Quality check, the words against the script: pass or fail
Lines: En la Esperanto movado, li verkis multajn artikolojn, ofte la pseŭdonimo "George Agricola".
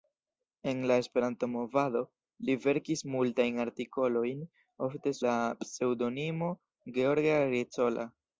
pass